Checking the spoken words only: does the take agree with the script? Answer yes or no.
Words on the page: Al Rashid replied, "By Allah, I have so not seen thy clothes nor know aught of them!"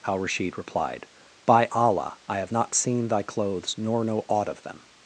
no